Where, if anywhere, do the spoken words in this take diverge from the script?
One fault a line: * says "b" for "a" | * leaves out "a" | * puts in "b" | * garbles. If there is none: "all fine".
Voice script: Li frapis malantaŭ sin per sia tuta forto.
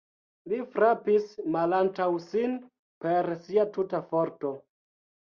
all fine